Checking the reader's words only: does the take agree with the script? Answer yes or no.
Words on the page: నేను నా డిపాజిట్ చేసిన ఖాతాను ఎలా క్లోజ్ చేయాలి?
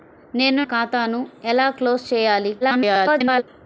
no